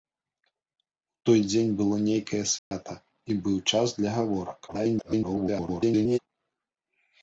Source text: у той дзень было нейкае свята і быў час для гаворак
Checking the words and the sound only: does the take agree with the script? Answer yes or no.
no